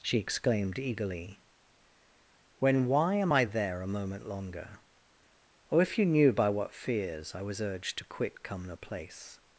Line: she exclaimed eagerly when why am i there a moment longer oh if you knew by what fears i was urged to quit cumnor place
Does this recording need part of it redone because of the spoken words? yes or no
no